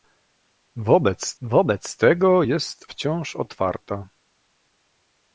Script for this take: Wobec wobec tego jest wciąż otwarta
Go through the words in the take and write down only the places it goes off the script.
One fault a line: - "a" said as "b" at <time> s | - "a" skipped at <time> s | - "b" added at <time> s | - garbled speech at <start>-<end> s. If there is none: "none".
none